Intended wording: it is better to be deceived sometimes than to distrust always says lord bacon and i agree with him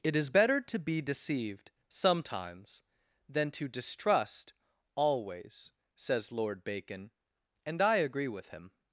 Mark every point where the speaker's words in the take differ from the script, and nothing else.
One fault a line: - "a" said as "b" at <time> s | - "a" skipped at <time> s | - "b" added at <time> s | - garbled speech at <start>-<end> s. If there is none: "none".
none